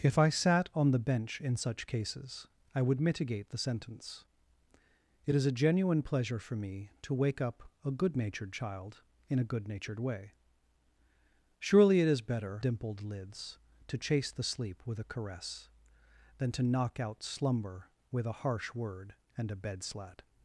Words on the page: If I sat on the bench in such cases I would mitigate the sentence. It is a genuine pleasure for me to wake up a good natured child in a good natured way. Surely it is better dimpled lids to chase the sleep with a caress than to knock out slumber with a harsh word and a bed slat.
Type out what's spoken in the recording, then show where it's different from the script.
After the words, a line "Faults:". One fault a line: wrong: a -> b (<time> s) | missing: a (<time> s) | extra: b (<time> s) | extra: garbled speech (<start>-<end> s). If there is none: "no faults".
If I sat on the bench in such cases I would mitigate the sentence. It is a genuine pleasure for me to wake up a good natured child in a good natured way. Surely it is better dimpled lids to chase the sleep with a caress than to knock out slumber with a harsh word and a bed slat.
Faults:
no faults